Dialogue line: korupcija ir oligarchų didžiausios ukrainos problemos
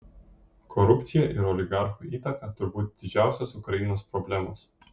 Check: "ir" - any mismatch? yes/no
no